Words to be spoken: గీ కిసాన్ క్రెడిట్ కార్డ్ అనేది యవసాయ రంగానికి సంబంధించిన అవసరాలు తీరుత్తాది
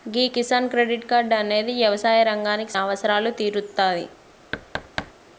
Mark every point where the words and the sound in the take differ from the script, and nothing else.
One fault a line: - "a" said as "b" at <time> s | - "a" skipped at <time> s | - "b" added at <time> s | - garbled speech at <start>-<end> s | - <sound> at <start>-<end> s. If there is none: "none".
- "సంబంధించిన" skipped at 2.7 s
- thud at 4.5-5.1 s